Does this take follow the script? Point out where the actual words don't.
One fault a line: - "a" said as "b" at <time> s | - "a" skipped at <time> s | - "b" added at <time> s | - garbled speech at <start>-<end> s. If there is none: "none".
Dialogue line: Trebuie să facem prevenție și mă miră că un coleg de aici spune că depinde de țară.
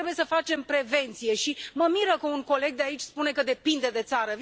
none